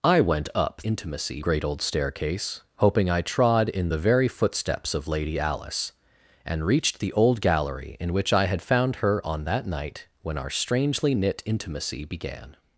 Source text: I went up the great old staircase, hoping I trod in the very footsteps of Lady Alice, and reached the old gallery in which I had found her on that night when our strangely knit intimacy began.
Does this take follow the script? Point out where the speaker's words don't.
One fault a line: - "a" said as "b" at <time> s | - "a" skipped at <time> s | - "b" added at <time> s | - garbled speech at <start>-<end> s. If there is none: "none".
- "the" said as "intimacy" at 0.8 s